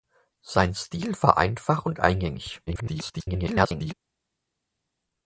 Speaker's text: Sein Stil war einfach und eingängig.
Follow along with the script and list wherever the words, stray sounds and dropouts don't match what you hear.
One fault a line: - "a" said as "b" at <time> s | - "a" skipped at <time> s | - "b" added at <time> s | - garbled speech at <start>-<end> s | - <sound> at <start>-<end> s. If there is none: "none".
- garbled speech at 2.7-3.9 s